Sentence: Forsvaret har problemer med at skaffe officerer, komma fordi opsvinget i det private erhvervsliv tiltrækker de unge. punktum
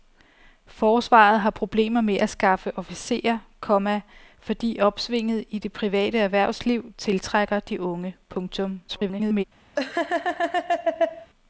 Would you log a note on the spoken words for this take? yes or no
yes